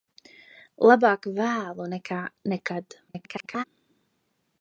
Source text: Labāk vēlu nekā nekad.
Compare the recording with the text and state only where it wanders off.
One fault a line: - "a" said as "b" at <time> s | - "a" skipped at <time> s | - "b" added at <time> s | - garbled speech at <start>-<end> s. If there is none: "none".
- garbled speech at 3.1-3.6 s